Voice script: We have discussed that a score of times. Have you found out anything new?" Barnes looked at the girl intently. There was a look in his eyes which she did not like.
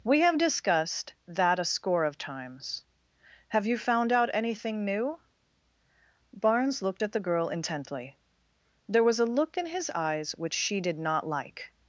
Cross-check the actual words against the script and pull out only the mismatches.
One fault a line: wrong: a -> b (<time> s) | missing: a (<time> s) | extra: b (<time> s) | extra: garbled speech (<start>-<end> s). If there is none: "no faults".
no faults